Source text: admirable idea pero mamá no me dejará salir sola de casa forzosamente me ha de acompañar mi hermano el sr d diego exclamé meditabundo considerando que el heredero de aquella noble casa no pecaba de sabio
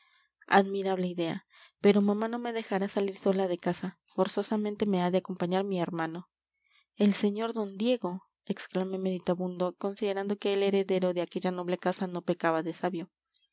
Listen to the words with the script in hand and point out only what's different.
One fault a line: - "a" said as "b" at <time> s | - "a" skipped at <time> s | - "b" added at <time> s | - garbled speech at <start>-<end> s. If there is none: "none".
none